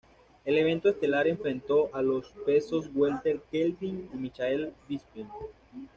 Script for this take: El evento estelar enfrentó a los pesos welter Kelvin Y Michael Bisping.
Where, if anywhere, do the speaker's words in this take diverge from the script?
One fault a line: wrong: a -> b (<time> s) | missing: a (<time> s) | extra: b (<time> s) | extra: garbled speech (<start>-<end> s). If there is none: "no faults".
no faults